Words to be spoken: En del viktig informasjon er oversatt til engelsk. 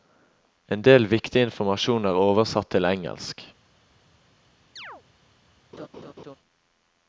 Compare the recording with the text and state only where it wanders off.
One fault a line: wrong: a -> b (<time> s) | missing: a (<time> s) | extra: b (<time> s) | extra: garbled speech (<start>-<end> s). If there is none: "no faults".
no faults